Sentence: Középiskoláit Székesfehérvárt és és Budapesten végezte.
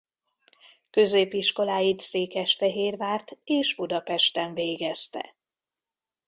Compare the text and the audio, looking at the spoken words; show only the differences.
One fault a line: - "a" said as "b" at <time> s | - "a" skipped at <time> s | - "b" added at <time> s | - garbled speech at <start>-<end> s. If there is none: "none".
- "és" skipped at 3.8 s